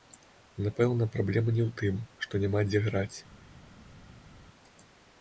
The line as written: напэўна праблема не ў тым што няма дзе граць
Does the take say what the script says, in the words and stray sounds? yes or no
yes